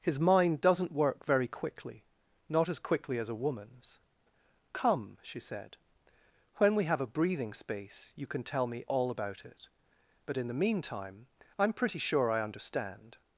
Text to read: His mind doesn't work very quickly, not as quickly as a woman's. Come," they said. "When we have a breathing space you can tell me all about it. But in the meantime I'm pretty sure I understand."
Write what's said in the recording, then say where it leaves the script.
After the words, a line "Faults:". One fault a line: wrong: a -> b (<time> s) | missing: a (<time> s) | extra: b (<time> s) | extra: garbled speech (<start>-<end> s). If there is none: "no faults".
His mind doesn't work very quickly, not as quickly as a woman's. Come," she said. "When we have a breathing space you can tell me all about it. But in the meantime I'm pretty sure I understand."
Faults:
wrong: they -> she (5.2 s)